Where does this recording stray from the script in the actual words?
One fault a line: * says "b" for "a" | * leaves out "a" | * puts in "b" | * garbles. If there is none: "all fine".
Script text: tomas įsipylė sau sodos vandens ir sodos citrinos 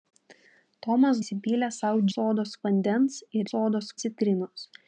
all fine